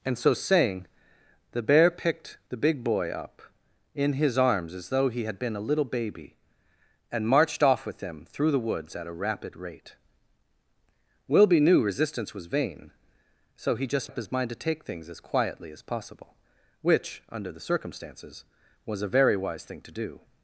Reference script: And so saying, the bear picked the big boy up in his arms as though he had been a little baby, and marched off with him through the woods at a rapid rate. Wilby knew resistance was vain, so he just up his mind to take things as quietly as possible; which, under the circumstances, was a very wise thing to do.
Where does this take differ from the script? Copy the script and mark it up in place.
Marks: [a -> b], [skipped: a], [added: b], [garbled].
And so saying, the bear picked the big boy up in his arms as though he had been a little baby, and marched off with him through the woods at a rapid rate. Wilby knew resistance was vain, so he just up his mind to take things as quietly as possible; which, under the circumstances, was a very wise thing to do.